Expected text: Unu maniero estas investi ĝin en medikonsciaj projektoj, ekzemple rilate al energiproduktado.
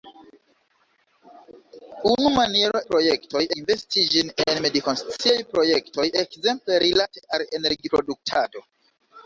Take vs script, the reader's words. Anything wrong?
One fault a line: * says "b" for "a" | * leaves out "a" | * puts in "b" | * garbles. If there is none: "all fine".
* says "projektoj" for "estas"